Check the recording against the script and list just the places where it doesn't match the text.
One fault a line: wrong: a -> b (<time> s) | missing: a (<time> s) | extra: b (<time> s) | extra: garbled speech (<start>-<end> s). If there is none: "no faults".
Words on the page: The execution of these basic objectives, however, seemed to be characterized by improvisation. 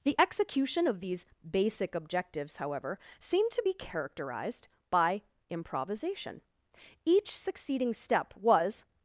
extra: Each succeeding step was (7.0 s)